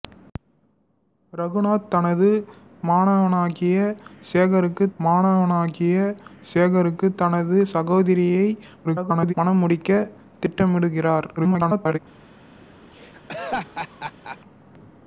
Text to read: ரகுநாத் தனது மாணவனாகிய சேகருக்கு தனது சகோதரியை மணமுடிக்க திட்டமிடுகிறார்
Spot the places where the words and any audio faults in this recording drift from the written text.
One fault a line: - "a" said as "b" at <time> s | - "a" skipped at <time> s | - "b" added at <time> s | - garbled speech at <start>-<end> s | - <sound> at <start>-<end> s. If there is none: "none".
- "மாணவனாகிய சேகருக்கு" added at 5.0 s
- garbled speech at 8.8-9.3 s
- garbled speech at 11.4-12.0 s
- laugh at 12.9-14.4 s